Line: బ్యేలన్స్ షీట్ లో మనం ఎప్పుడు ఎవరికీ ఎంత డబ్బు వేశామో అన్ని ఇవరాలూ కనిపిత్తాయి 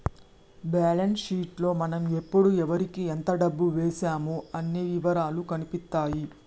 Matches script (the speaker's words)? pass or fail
pass